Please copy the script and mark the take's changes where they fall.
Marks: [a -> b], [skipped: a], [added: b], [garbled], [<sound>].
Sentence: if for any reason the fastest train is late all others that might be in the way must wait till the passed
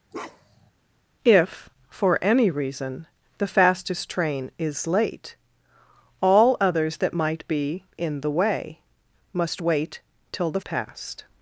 [bark] if for any reason the fastest train is late all others that might be in the way must wait till the passed